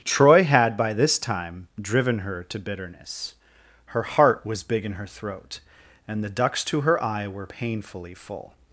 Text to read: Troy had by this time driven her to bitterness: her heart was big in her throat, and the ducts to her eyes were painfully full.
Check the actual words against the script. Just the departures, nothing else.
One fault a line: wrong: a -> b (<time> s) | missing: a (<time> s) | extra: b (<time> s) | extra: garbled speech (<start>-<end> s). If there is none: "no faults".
wrong: eyes -> eye (7.0 s)